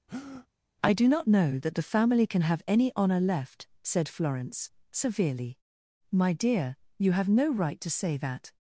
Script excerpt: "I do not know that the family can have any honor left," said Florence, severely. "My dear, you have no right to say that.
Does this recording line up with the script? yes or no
yes